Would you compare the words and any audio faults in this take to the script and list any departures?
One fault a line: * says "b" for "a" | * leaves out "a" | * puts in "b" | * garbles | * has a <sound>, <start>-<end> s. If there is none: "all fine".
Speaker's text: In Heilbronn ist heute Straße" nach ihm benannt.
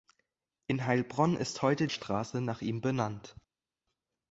all fine